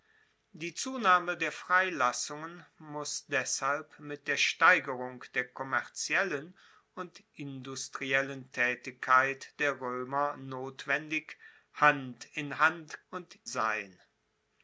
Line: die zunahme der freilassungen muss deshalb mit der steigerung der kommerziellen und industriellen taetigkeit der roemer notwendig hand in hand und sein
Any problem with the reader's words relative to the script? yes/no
no